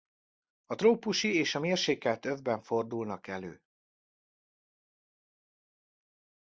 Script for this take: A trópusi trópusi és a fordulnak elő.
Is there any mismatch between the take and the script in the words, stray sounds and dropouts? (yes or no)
yes